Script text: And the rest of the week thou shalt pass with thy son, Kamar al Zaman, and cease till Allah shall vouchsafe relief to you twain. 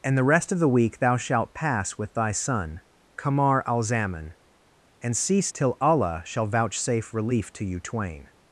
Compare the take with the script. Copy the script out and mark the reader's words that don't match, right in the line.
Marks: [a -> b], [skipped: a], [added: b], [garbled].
And the rest of the week thou shalt pass with thy son, Kamar al Zaman, and cease till Allah shall vouchsafe relief to you twain.